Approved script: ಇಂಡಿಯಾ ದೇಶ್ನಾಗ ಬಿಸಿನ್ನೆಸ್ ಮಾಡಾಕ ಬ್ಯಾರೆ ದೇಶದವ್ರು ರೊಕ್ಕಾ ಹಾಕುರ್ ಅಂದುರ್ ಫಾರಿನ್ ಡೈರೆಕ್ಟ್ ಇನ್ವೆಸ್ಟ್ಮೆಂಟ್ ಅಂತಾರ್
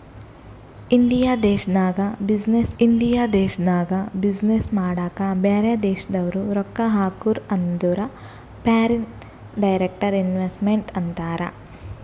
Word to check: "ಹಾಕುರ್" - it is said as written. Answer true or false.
true